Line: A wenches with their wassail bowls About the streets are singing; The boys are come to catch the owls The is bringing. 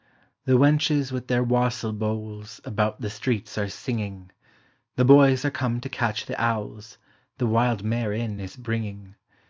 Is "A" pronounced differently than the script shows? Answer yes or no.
yes